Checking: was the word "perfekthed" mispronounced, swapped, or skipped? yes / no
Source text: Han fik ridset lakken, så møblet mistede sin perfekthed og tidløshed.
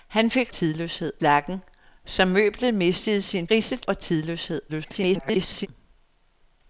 yes